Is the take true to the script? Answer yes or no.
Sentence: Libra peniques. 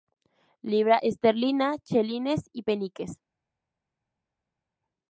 no